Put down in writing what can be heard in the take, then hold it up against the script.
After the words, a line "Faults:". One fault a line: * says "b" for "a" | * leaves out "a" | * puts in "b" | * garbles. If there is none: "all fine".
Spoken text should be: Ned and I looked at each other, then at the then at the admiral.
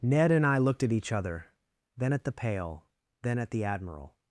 Ned and I looked at each other, then at the pail, then at the admiral.
Faults:
* puts in "pail"